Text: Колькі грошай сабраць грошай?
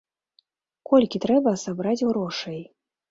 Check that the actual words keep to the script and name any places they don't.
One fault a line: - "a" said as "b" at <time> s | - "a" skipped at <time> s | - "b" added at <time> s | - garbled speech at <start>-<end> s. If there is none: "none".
- "грошай" said as "трэба" at 1.2 s